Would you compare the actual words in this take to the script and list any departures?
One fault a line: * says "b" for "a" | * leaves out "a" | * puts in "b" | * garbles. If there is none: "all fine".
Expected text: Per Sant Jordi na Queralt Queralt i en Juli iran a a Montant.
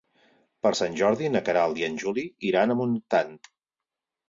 * leaves out "Queralt"
* leaves out "a"